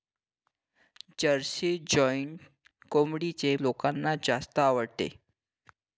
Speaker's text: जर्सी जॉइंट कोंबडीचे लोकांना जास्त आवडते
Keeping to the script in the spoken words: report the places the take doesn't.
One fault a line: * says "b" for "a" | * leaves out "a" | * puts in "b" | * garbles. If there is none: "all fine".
all fine